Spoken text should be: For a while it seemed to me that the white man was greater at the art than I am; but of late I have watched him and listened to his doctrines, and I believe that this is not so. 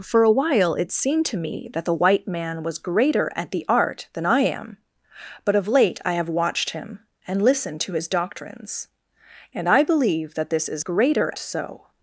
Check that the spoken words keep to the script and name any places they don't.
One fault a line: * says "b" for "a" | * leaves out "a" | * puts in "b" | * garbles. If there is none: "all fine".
* says "greater" for "not"